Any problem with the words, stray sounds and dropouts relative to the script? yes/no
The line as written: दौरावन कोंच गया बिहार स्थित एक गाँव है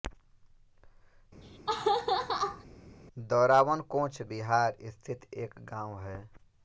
yes